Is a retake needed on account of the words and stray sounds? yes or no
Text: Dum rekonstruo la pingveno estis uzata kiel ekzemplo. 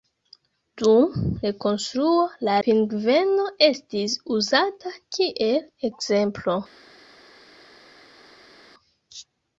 no